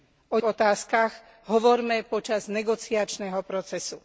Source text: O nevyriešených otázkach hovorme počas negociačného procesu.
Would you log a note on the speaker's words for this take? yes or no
yes